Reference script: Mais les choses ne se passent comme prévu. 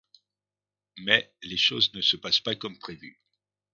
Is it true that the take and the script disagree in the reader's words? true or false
true